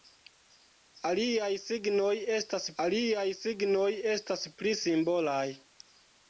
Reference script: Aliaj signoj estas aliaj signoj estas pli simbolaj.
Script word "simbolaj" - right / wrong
right